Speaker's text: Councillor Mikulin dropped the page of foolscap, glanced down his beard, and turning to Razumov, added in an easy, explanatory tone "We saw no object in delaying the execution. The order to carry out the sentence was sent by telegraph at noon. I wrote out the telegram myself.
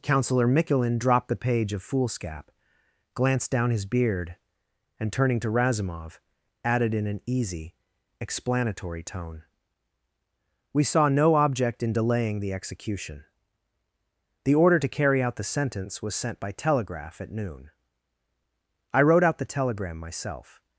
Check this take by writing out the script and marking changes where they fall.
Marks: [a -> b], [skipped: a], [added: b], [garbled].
Councillor Mikulin dropped the page of foolscap, glanced down his beard, and turning to Razumov, added in an easy, explanatory tone "We saw no object in delaying the execution. The order to carry out the sentence was sent by telegraph at noon. I wrote out the telegram myself.